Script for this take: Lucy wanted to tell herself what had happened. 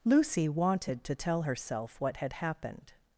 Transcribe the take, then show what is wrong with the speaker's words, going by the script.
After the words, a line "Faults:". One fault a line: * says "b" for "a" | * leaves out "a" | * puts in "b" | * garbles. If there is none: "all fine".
Lucy wanted to tell herself what had happened.
Faults:
all fine